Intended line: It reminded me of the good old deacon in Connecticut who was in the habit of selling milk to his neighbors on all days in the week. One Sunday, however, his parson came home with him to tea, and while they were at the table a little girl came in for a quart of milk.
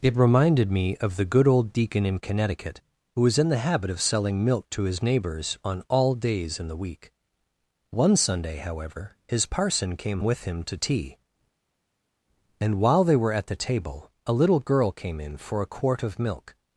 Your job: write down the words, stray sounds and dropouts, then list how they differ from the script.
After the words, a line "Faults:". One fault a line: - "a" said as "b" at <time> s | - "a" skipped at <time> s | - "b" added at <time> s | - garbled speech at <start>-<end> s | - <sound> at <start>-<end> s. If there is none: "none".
It reminded me of the good old deacon in Connecticut who was in the habit of selling milk to his neighbors on all days in the week. One Sunday, however, his parson came with him to tea, and while they were at the table a little girl came in for a quart of milk.
Faults:
- "home" skipped at 10.2 s